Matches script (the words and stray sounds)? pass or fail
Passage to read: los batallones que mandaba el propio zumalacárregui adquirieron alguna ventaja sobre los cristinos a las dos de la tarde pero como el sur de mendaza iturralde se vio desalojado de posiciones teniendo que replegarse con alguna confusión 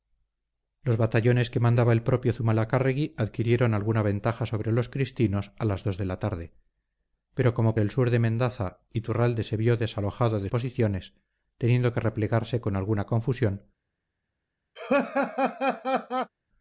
fail